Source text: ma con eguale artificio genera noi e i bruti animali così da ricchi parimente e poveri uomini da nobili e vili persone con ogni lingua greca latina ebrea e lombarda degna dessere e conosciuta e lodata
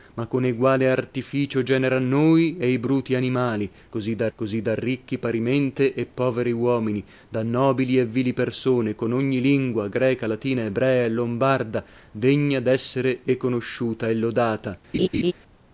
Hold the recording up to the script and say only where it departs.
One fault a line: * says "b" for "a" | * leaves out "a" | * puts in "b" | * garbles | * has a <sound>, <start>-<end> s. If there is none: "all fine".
* puts in "così da"
* has a laugh, 14.9-15.3 s